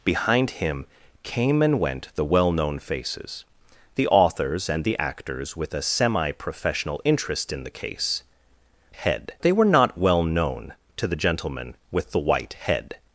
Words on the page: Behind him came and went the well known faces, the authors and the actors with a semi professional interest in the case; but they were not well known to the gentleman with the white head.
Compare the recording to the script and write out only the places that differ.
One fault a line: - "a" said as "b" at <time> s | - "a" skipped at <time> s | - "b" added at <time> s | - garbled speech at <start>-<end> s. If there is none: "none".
- "but" said as "head" at 8.9 s